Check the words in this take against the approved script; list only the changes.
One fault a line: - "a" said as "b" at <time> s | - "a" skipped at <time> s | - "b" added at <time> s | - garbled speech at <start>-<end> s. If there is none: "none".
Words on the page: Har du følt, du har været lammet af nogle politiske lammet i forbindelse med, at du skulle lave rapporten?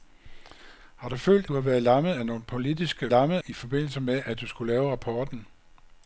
none